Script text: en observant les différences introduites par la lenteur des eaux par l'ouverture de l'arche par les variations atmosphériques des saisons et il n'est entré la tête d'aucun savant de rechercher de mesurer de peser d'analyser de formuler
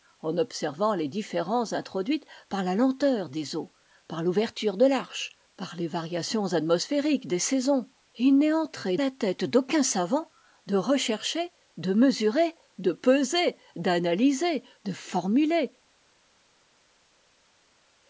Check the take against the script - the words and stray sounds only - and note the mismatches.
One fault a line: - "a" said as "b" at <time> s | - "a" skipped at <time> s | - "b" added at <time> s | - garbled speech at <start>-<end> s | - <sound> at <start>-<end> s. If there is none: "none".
none